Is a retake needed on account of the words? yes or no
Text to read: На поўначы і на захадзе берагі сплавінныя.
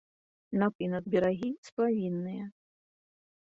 yes